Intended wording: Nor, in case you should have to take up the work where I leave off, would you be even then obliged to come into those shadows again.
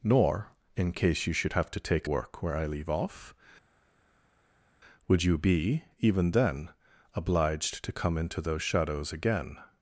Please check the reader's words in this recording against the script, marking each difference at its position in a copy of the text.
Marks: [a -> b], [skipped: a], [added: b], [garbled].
Nor, in case you should have to take [skipped: up the] work where I leave off, would you be even then obliged to come into those shadows again.